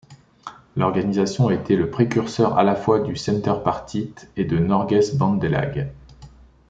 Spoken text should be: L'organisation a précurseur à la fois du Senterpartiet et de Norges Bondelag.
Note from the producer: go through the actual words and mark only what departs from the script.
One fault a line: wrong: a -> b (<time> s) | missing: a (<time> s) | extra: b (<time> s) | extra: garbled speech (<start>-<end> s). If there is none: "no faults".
extra: été le (1.5 s)